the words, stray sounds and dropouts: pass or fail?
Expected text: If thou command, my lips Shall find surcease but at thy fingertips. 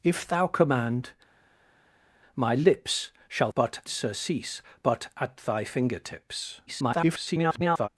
fail